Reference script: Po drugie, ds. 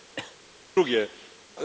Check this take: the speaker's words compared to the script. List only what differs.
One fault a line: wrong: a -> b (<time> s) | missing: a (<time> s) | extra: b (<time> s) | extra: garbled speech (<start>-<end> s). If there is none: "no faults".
no faults